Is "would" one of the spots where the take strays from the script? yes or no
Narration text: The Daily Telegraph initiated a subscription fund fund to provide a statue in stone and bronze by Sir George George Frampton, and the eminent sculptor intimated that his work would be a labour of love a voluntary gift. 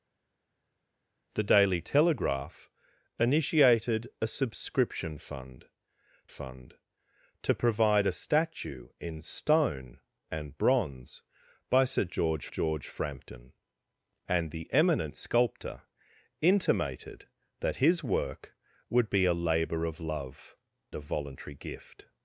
no